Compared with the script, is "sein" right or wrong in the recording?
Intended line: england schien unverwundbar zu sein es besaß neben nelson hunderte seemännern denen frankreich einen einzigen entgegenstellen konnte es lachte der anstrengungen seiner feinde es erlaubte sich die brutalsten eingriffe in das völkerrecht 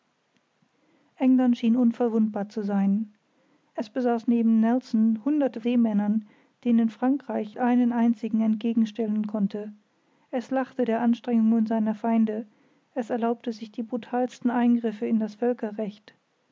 right